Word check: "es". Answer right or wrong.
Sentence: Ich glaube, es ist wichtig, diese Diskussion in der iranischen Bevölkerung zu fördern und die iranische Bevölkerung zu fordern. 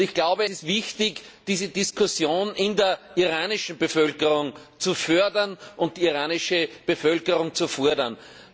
wrong